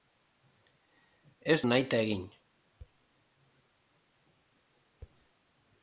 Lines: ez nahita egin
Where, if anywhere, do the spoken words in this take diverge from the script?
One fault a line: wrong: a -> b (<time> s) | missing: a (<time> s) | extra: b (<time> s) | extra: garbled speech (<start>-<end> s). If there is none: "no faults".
no faults